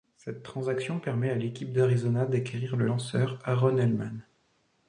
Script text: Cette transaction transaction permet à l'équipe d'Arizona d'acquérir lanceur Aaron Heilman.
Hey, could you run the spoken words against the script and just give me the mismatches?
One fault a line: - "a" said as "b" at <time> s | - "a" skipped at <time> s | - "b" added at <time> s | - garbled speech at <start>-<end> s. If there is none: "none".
- "transaction" skipped at 1.0 s
- "le" added at 2.8 s